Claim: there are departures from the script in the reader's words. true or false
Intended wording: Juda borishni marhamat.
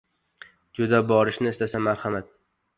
true